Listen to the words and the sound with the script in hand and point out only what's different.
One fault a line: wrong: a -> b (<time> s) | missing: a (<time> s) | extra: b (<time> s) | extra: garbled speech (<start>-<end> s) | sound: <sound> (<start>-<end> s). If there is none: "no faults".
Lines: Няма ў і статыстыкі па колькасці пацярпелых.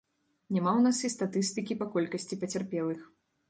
extra: нас (0.8 s)